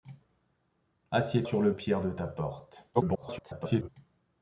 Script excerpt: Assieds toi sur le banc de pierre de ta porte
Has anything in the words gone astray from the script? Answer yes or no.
yes